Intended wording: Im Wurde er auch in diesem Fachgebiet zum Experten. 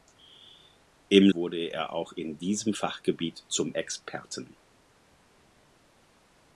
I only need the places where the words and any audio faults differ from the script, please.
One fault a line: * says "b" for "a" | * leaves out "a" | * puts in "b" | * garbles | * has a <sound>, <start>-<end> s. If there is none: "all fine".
all fine